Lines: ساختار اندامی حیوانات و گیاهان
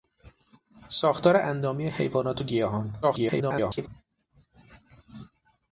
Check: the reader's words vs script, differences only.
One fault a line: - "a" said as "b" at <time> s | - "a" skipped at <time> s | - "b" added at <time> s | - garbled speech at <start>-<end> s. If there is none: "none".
- garbled speech at 3.0-3.9 s